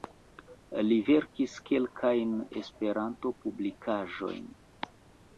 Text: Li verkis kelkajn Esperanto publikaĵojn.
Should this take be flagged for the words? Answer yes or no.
no